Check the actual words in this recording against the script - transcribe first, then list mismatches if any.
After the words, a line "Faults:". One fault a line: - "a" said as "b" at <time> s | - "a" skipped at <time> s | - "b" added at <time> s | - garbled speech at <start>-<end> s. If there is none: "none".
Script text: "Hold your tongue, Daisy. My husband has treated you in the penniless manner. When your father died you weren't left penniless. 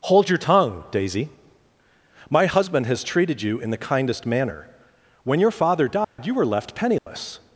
"Hold your tongue, Daisy. My husband has treated you in the kindest manner. When your father died you were left penniless.
Faults:
- "penniless" said as "kindest" at 3.8 s
- "weren't" said as "were" at 6.3 s